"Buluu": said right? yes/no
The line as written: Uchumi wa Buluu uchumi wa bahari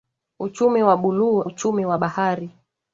yes